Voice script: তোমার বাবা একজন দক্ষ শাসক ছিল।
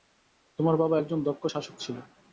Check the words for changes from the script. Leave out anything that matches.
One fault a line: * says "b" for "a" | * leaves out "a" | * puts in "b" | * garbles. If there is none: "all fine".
all fine